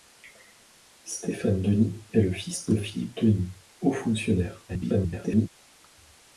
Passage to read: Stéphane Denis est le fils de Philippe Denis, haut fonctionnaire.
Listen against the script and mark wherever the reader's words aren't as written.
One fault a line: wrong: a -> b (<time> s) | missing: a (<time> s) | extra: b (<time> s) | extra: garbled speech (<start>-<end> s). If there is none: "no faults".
extra: garbled speech (4.7-5.5 s)